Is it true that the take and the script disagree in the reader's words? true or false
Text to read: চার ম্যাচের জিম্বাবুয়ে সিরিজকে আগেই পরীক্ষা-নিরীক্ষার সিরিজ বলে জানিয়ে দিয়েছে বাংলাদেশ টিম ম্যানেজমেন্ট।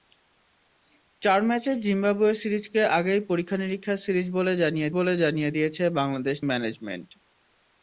true